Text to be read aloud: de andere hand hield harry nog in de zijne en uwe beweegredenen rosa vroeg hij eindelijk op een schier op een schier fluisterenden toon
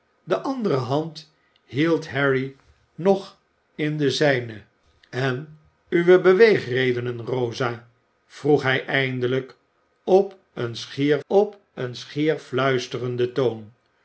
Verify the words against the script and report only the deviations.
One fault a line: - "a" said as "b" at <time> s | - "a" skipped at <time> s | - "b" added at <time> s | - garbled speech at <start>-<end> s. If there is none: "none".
none